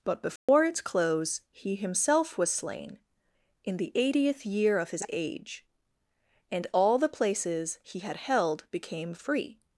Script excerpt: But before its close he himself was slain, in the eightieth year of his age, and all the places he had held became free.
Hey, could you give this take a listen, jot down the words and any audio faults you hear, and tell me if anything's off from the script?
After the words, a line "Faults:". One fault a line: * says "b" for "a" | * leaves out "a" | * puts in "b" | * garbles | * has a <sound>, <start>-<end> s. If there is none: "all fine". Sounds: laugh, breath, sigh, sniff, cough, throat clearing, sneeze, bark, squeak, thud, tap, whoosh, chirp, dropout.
But before its close he himself was slain, in the eightieth year of his age, and all the places he had held became free.
Faults:
* has a dropout, 0.4-0.5 s